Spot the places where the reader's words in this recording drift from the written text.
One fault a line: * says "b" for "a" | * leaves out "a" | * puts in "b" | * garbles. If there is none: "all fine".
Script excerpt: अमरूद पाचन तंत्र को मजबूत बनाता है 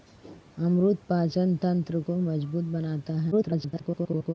* garbles